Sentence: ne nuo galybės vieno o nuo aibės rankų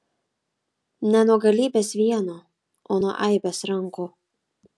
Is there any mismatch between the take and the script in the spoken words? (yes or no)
no